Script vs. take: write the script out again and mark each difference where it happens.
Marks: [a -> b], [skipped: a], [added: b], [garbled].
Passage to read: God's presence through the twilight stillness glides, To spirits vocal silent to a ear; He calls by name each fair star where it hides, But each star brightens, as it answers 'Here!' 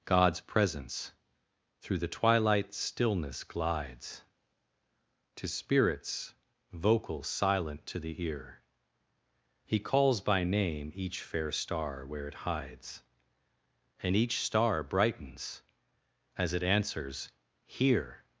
God's presence through the twilight stillness glides, To spirits vocal silent to [a -> the] ear; He calls by name each fair star where it hides, [But -> And] each star brightens, as it answers 'Here!'